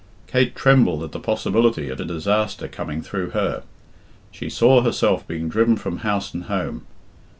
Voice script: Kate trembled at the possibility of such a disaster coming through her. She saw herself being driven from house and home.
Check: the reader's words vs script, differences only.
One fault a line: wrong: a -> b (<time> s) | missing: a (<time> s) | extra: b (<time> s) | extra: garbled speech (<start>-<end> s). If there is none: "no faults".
missing: such (2.0 s)